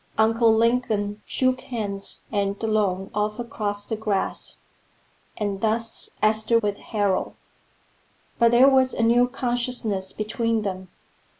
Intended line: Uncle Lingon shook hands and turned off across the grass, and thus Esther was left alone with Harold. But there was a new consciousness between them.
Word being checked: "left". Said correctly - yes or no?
no